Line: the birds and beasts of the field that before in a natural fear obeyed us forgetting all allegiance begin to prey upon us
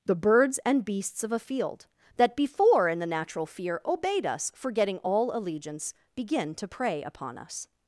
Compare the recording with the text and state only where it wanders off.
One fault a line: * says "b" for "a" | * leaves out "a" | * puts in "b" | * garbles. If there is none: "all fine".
* says "a" for "the"
* says "the" for "a"